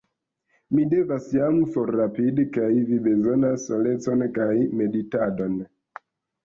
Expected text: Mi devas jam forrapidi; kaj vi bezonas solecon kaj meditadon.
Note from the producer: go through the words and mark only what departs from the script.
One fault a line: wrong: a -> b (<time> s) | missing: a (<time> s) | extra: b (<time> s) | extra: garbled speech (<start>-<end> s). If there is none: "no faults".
no faults